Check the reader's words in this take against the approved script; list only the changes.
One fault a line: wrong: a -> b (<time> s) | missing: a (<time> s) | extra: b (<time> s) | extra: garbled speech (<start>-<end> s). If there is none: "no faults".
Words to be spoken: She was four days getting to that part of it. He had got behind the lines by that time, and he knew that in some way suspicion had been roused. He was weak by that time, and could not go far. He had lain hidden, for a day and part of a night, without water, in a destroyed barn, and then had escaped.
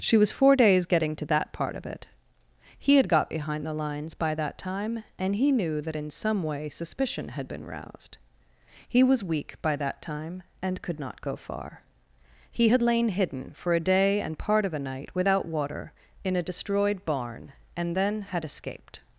no faults